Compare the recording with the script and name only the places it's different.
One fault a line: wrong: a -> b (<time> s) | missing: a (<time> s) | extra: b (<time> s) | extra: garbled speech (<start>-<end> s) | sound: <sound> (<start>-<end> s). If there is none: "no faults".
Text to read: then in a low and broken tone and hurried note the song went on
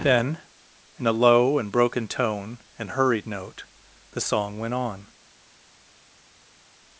no faults